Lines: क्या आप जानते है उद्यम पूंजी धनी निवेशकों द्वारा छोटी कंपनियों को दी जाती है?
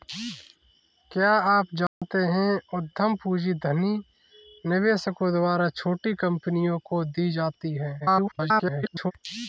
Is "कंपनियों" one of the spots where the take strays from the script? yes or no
no